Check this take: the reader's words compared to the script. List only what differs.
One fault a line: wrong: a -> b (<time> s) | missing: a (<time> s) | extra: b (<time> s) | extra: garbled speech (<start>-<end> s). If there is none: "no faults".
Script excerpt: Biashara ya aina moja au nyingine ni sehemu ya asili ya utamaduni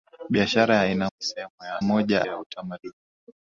missing: moja au nyingine (1.1 s)
wrong: asili -> moja (1.8 s)